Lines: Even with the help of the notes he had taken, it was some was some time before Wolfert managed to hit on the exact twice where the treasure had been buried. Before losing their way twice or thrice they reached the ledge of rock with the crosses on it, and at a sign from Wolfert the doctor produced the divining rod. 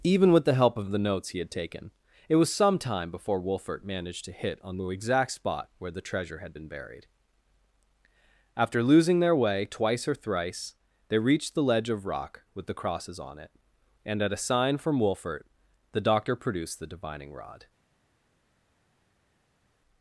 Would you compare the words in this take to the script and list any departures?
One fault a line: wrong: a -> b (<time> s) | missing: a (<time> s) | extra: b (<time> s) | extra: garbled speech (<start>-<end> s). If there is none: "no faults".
missing: was some (2.8 s)
wrong: twice -> spot (5.3 s)
wrong: Before -> After (8.6 s)